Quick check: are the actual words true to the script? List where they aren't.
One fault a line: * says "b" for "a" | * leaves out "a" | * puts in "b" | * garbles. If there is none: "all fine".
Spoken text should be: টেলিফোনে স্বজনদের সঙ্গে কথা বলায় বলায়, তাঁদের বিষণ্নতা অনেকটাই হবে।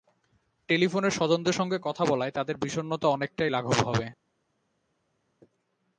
* leaves out "বলায়"
* puts in "লাঘব"